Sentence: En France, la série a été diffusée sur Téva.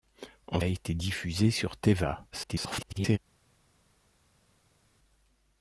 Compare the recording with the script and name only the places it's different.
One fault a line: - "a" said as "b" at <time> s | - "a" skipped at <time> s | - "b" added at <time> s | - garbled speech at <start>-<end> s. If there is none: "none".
- "France la série" skipped at 0.6 s
- garbled speech at 2.3-3.2 s